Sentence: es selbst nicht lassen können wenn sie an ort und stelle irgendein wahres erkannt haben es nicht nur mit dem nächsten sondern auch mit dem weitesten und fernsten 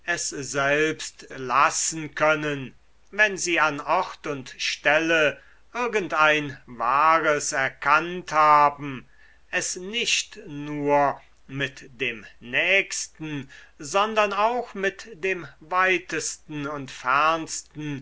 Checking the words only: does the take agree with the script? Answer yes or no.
no